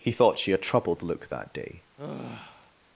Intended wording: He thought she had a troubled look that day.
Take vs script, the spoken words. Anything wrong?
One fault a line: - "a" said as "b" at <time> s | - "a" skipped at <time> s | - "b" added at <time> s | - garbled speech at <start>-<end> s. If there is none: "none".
- "had" skipped at 0.5 s